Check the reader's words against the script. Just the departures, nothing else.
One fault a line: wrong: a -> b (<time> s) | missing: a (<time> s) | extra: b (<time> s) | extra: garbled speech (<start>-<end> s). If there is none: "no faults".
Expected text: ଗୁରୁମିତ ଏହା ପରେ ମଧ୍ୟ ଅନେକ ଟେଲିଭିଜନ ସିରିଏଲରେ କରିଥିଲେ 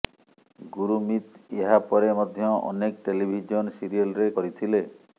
no faults